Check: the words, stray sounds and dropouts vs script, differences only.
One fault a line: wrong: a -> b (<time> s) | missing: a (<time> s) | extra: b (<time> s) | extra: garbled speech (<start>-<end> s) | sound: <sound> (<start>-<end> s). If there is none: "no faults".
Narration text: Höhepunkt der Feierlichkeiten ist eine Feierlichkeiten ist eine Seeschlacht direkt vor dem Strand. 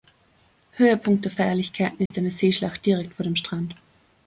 sound: dropout (2.1-2.1 s)
missing: Feierlichkeiten ist eine (2.3 s)